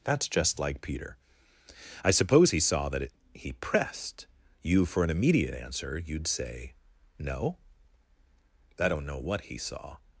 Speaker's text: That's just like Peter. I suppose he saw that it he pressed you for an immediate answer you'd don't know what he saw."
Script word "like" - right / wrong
right